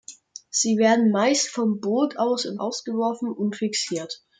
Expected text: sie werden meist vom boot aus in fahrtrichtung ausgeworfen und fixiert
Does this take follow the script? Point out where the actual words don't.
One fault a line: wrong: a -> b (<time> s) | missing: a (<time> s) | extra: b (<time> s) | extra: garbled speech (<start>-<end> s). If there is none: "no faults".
missing: fahrtrichtung (2.6 s)